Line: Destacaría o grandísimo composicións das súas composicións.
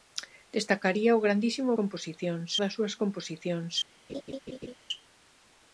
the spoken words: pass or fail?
pass